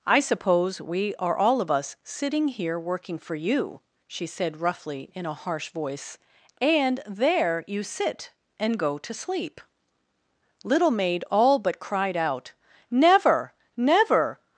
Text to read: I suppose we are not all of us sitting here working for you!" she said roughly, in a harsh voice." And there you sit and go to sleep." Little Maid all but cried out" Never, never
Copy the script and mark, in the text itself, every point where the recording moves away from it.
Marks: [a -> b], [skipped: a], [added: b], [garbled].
I suppose we are [skipped: not] all of us sitting here working for you!" she said roughly, in a harsh voice." And there you sit and go to sleep." Little Maid all but cried out" Never, never